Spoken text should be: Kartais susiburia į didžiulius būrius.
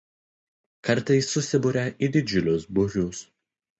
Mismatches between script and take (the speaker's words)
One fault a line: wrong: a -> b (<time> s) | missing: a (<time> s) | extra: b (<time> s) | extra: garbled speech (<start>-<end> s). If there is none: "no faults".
no faults